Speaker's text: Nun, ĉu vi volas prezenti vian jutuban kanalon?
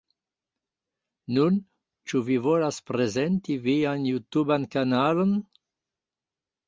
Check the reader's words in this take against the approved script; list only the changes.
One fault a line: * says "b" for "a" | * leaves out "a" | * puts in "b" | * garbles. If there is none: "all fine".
all fine